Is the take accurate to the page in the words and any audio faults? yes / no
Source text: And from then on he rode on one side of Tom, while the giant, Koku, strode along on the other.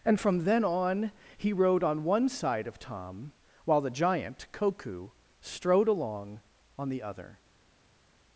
yes